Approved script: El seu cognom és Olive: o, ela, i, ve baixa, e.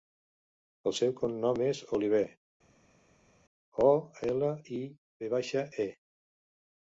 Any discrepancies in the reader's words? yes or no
no